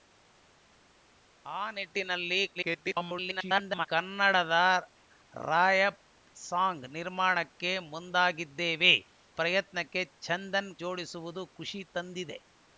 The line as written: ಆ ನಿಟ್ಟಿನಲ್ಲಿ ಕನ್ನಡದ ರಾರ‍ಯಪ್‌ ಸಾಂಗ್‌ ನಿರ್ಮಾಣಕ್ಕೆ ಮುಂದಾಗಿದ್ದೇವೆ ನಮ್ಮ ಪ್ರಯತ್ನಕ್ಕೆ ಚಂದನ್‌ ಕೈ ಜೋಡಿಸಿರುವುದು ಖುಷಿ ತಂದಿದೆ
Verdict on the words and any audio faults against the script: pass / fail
fail